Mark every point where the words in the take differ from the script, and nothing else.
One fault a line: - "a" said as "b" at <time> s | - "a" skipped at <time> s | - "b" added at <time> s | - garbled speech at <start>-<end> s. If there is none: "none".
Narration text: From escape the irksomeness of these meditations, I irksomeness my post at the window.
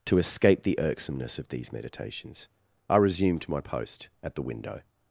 - "From" said as "To" at 0.1 s
- "irksomeness" said as "resumed" at 3.0 s